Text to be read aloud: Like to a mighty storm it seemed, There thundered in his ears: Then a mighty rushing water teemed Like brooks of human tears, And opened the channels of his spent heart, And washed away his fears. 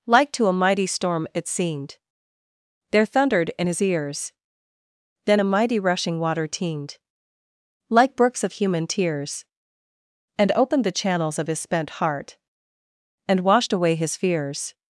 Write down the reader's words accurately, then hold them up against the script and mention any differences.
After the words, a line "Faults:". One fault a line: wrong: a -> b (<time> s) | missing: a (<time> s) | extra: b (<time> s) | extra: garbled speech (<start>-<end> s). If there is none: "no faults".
Like to a mighty storm it seemed, There thundered in his ears: Then a mighty rushing water teemed Like brooks of human tears, And opened the channels of his spent heart, And washed away his fears.
Faults:
no faults